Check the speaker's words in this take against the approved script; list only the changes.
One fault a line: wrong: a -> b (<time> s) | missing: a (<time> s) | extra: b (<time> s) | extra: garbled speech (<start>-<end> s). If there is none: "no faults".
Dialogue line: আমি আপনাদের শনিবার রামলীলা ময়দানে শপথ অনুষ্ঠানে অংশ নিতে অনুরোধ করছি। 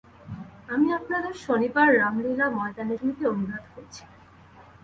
missing: শপথ অনুষ্ঠানে অংশ (3.0 s)